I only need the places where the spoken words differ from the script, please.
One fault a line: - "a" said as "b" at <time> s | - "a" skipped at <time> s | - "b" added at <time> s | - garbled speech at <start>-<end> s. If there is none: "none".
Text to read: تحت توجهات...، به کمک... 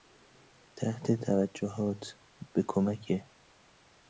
none